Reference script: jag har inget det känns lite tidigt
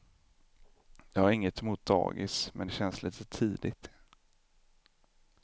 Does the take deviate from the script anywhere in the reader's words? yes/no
yes